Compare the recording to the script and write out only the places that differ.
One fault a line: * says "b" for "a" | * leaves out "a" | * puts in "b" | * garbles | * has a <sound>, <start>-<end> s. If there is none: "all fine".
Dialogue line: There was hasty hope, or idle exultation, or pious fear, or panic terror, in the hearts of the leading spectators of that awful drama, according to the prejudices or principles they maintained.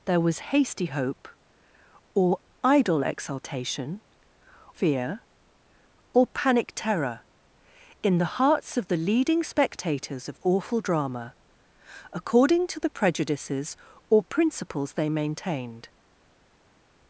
* leaves out "or pious"
* leaves out "that"